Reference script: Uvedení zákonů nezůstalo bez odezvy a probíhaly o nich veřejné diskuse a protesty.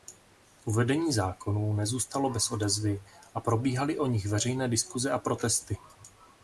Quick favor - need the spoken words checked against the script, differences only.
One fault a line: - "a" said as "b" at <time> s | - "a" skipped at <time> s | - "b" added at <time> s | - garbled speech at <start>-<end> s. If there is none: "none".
none